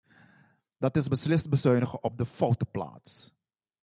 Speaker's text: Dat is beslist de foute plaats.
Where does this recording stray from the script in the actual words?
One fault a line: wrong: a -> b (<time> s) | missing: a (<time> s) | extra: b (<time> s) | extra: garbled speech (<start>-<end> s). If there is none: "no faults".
extra: bezuinigen op (1.5 s)